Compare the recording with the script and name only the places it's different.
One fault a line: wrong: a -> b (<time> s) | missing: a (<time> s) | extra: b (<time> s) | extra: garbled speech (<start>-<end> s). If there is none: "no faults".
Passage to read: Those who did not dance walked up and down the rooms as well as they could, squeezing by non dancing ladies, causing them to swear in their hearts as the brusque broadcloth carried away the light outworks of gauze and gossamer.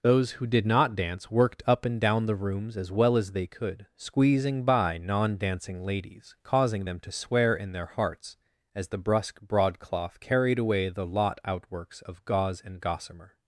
wrong: walked -> worked (1.3 s)
wrong: light -> lot (11.0 s)